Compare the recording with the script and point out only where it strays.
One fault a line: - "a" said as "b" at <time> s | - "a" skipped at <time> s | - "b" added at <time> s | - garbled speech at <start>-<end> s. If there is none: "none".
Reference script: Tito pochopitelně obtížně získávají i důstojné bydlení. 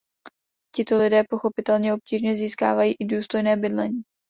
- "lidé" added at 1.0 s